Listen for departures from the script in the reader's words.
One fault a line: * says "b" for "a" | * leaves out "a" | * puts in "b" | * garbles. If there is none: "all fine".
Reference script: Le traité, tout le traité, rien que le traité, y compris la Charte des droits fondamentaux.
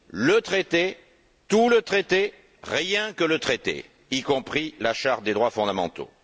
all fine